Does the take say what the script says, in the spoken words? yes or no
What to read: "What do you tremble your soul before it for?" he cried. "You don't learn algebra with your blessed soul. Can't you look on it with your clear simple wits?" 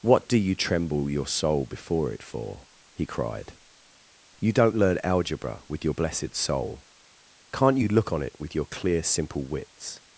yes